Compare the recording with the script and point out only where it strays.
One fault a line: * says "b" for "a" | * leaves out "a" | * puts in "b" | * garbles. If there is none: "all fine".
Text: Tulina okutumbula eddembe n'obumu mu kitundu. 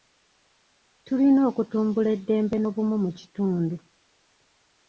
all fine